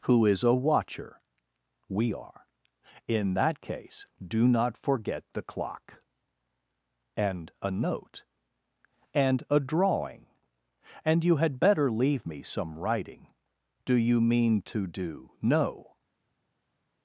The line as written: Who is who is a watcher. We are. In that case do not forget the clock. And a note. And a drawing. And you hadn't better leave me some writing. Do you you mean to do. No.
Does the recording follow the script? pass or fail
fail